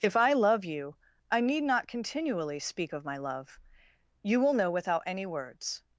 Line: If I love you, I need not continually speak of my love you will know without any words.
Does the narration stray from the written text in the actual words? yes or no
no